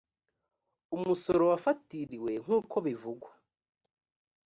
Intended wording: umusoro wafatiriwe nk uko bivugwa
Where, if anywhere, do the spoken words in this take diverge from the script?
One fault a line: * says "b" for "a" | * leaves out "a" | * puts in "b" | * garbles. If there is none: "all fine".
all fine